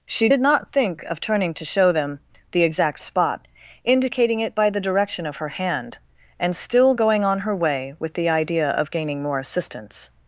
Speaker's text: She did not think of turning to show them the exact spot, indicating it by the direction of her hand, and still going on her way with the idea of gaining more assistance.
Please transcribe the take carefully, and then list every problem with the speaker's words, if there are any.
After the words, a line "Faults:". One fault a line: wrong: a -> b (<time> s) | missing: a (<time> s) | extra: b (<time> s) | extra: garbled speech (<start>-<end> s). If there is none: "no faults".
She did not think of turning to show them the exact spot, indicating it by the direction of her hand, and still going on her way with the idea of gaining more assistance.
Faults:
no faults